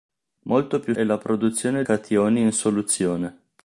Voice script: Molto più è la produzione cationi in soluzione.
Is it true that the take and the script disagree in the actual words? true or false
false